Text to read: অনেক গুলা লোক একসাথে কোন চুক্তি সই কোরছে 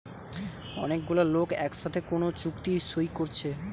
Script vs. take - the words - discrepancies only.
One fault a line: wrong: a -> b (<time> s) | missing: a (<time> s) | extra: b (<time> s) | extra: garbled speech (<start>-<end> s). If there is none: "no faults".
no faults